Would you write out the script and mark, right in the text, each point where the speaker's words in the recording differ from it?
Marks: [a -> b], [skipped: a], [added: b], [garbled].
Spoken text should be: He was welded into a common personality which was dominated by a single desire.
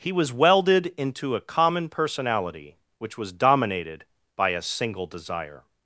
He was welded into a common personality which was dominated by a single desire.